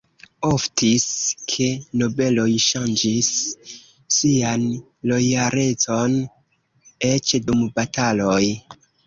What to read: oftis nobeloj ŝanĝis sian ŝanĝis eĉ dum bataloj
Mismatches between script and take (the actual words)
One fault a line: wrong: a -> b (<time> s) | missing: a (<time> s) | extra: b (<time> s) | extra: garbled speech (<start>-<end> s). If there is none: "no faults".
extra: ke (1.5 s)
wrong: ŝanĝis -> lojalecon (5.1 s)